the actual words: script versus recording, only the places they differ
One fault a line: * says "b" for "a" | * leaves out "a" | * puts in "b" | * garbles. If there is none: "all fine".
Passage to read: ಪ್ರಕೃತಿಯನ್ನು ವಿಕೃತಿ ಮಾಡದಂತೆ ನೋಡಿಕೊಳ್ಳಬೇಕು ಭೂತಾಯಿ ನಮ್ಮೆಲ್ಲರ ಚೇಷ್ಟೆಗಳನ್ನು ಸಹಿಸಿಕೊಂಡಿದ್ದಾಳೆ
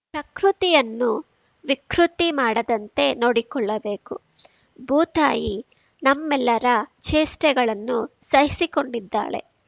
all fine